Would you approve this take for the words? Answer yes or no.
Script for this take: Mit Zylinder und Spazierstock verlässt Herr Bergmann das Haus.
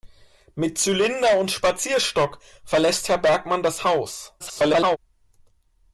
no